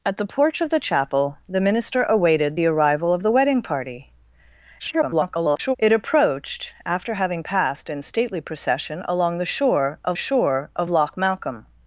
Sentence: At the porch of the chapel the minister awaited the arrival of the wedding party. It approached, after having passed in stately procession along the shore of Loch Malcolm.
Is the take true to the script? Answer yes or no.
no